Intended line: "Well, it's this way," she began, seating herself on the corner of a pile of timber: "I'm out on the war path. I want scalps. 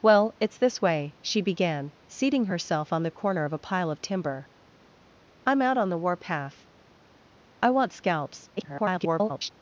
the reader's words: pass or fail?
fail